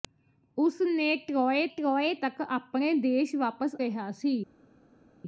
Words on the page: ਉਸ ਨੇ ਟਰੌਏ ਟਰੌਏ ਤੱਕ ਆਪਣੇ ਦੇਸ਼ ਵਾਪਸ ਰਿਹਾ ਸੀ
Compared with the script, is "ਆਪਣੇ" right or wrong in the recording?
right